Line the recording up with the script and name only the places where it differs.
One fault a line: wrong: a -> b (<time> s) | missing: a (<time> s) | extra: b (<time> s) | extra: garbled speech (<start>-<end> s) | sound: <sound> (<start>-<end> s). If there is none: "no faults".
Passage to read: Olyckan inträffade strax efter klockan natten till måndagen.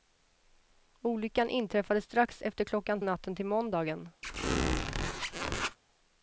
sound: squeak (4.2-5.8 s)